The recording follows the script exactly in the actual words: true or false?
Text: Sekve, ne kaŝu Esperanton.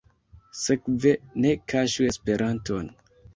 true